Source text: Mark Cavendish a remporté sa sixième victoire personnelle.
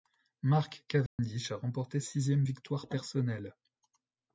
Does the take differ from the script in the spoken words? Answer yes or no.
yes